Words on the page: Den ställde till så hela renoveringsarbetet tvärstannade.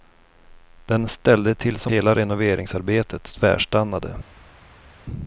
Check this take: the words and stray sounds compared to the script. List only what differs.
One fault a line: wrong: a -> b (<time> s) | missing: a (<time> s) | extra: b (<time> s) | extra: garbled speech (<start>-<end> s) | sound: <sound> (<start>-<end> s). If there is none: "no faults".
no faults